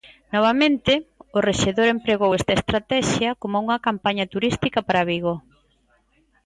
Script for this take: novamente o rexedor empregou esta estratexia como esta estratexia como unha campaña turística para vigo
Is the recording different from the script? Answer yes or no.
yes